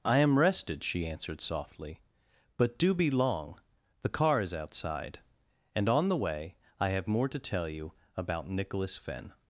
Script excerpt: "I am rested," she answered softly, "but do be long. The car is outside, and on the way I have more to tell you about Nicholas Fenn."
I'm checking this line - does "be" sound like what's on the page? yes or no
yes